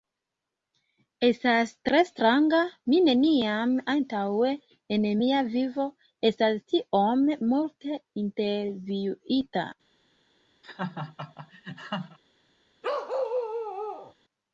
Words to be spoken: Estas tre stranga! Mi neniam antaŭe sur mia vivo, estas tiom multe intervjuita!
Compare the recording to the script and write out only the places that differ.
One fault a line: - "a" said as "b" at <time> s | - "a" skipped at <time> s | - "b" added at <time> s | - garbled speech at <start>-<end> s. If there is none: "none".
- "sur" said as "en" at 5.0 s